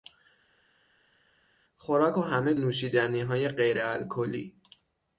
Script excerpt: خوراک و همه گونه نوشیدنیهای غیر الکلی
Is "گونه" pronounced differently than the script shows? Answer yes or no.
yes